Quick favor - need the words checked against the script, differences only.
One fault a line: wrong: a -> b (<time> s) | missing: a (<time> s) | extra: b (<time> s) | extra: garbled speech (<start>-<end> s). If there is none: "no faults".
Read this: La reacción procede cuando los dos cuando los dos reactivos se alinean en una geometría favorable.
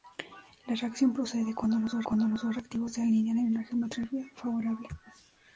no faults